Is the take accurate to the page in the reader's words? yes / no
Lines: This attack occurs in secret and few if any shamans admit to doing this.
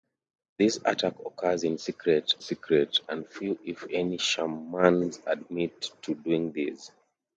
no